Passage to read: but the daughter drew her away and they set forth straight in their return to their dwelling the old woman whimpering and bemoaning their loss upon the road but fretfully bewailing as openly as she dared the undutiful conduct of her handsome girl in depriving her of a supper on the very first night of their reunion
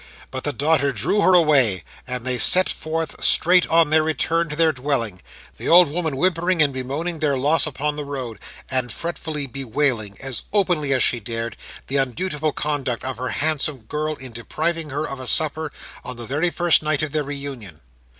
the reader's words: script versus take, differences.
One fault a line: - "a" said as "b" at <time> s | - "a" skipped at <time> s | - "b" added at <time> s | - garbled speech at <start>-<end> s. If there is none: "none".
- "in" said as "on" at 3.7 s
- "but" said as "and" at 8.7 s